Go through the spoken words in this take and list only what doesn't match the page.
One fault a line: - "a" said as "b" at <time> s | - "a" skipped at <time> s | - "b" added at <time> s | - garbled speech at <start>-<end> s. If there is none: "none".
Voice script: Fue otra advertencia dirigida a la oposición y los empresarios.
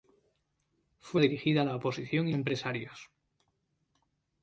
- "otra advertencia" skipped at 1.2 s
- "los" skipped at 2.3 s